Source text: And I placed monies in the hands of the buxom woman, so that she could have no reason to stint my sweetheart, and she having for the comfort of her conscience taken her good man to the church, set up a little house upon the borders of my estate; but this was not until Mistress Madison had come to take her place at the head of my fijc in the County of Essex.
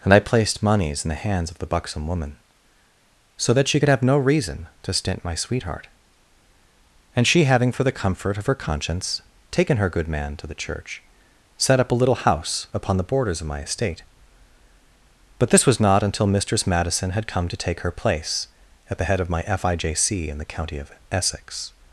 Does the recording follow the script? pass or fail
pass